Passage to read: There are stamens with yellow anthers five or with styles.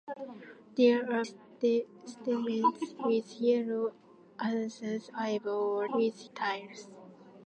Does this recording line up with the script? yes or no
yes